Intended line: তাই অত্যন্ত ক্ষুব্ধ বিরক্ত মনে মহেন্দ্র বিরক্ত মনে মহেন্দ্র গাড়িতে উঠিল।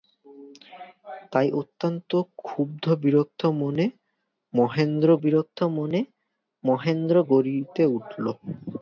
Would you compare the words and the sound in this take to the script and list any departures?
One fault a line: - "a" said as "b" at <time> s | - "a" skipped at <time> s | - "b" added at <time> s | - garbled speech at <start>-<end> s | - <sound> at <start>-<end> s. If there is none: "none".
none